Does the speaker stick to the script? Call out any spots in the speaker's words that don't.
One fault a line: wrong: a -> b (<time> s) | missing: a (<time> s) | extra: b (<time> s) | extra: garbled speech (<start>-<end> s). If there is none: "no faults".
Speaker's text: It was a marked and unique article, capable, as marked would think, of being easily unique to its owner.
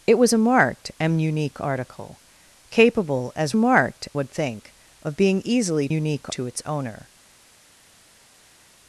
no faults